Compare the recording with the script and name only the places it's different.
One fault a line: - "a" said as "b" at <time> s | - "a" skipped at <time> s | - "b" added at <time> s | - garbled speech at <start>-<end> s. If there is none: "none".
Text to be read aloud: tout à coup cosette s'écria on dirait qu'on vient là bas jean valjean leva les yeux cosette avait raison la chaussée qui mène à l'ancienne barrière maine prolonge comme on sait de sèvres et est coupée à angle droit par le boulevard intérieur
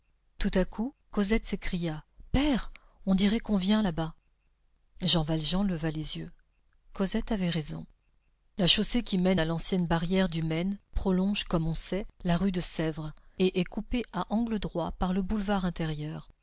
- "père" added at 2.3 s
- "du" added at 10.3 s
- "la rue" added at 12.2 s